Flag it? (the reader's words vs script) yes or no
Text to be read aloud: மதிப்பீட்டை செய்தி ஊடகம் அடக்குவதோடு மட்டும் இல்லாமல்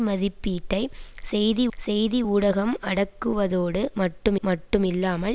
yes